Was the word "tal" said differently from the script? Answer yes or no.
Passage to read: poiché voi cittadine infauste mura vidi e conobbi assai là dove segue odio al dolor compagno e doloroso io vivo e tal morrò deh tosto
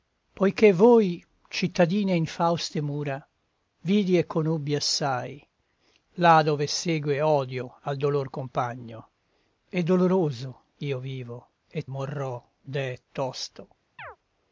yes